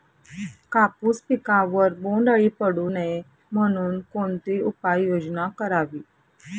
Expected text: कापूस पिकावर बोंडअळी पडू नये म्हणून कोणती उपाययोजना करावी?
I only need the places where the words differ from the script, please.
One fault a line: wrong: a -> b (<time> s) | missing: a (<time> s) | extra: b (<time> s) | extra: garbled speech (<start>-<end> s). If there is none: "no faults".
no faults